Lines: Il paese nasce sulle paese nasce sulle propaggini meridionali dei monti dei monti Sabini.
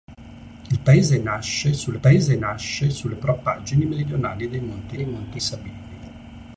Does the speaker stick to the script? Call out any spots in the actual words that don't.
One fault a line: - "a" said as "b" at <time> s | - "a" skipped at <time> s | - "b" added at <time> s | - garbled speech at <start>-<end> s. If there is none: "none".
none